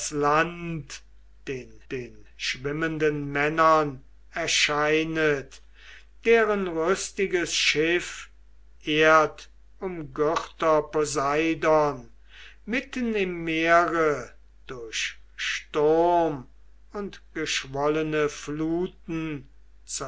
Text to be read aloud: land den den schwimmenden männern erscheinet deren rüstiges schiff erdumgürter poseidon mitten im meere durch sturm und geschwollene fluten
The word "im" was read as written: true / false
true